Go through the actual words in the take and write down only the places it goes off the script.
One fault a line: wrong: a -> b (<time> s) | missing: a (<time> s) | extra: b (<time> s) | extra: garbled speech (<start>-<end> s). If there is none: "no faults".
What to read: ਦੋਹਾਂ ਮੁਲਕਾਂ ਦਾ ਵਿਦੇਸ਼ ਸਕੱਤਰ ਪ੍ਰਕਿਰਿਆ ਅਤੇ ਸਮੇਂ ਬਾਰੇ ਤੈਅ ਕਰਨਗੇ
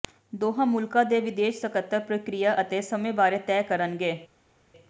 wrong: ਦਾ -> ਦੇ (1.1 s)